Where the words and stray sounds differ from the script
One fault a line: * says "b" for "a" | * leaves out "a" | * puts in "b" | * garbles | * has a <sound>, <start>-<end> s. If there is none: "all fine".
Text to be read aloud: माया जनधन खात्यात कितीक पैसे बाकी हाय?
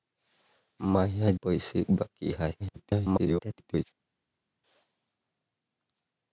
* leaves out "जनधन खात्यात कितीक"
* garbles